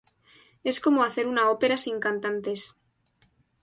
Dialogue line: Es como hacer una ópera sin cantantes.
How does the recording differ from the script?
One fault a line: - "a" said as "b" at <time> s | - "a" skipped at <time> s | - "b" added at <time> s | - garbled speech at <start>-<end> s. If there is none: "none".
none